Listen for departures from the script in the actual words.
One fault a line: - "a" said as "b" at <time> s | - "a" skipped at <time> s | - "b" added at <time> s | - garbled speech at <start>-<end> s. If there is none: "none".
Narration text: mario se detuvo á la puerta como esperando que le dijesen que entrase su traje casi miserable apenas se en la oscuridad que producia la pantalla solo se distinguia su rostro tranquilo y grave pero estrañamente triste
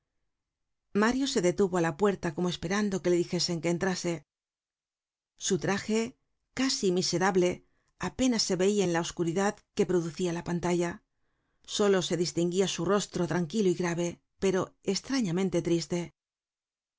- "veia" added at 8.6 s